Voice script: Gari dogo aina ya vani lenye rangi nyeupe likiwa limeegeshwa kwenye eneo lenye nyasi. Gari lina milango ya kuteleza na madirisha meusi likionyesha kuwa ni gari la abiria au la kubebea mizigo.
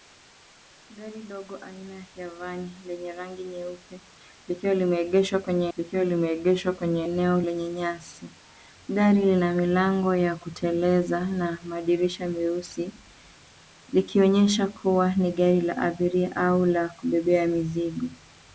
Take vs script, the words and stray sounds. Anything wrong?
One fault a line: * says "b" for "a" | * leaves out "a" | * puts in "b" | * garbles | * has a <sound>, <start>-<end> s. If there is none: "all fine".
* puts in "likiwa limeegeshwa kwenye"